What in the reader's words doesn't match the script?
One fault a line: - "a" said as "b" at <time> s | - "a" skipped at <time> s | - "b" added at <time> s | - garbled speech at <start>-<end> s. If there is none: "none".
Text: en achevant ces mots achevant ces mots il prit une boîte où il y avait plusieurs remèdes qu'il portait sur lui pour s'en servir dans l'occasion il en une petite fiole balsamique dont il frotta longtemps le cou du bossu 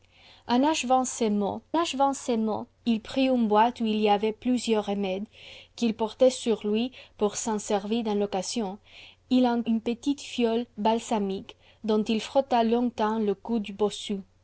none